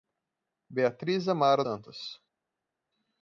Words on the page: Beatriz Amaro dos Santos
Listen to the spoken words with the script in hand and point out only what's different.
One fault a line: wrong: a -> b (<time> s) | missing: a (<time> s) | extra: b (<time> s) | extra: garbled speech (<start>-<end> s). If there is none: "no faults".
missing: dos (1.6 s)